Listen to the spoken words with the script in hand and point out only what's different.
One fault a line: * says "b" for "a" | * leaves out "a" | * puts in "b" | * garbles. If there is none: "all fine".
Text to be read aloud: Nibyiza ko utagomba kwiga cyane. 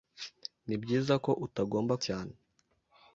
* leaves out "kwiga"